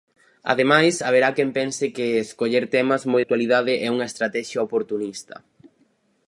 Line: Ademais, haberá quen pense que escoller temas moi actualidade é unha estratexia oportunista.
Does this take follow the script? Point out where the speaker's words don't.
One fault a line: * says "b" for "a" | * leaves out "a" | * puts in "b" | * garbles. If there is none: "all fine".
all fine